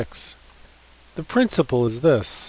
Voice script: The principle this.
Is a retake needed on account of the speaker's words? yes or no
yes